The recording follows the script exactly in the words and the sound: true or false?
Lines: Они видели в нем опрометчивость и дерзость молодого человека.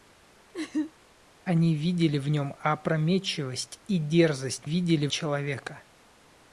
false